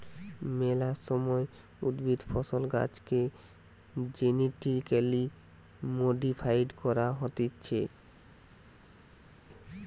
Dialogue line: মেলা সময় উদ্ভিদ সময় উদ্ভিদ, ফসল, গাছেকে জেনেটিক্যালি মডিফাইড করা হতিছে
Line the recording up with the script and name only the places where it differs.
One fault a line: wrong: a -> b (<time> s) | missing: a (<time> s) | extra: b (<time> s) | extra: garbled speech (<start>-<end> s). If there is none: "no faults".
missing: সময় উদ্ভিদ (2.2 s)